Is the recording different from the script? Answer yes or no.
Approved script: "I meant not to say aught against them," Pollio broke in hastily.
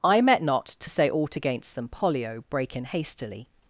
yes